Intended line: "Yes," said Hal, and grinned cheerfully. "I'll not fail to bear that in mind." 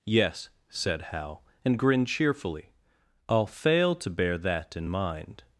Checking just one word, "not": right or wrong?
wrong